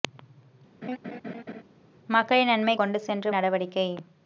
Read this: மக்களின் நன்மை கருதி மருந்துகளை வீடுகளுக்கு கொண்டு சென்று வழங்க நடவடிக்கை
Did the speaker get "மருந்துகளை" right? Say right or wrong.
wrong